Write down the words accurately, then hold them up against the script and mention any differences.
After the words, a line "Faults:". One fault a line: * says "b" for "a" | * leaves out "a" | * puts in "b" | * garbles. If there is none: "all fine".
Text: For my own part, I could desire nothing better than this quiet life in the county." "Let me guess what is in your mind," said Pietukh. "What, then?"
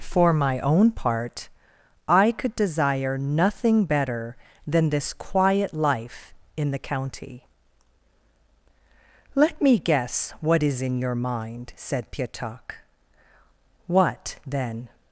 For my own part, I could desire nothing better than this quiet life in the county." "Let me guess what is in your mind," said Pietukh. "What, then?"
Faults:
all fine